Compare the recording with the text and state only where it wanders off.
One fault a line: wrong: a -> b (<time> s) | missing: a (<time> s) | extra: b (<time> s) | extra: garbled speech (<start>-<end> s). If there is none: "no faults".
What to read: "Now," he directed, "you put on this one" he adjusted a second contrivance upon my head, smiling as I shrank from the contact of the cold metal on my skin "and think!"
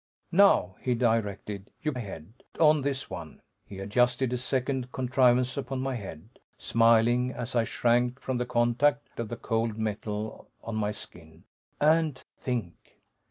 wrong: put -> head (2.0 s)